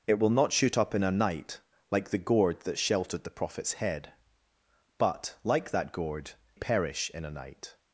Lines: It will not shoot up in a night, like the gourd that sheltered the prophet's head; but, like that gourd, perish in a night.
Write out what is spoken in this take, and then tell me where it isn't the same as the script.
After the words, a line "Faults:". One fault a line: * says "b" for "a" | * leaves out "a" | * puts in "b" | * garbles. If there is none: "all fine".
It will not shoot up in a night, like the gourd that sheltered the prophet's head; but, like that gourd, perish in a night.
Faults:
all fine